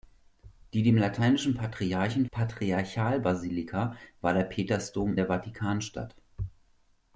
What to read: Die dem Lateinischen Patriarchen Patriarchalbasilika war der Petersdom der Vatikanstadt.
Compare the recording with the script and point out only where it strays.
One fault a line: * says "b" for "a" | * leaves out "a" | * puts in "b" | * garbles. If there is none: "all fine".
all fine